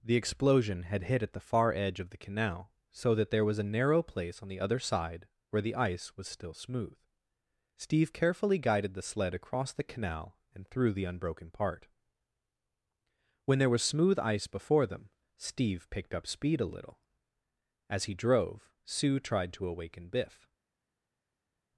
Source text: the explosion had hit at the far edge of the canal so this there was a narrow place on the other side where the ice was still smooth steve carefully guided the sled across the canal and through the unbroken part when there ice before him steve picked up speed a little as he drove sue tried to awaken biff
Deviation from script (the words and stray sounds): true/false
true